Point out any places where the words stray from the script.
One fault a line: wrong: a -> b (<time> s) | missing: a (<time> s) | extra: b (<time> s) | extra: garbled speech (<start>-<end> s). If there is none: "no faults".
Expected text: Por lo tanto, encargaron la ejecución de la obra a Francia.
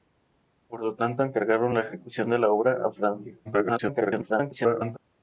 extra: garbled speech (3.4-5.0 s)